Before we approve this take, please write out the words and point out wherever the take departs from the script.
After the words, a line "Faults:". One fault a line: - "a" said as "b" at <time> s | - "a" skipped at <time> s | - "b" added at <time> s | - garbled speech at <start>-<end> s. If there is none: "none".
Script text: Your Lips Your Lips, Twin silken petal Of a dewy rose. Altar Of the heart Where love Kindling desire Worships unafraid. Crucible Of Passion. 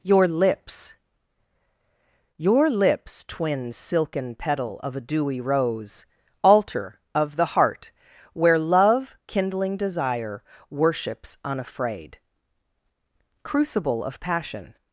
Your Lips Your Lips, Twin silken petal Of a dewy rose. Altar Of the heart Where love Kindling desire Worships unafraid. Crucible Of Passion.
Faults:
none